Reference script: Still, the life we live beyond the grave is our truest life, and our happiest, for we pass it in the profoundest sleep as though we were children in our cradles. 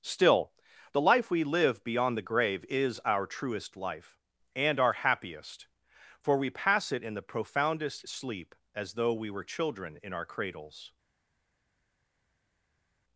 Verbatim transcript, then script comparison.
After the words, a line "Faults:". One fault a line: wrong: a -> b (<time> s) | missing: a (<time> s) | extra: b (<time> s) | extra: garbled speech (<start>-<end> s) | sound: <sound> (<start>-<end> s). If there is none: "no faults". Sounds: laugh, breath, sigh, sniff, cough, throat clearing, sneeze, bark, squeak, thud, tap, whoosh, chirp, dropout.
Still, the life we live beyond the grave is our truest life, and our happiest, for we pass it in the profoundest sleep as though we were children in our cradles.
Faults:
no faults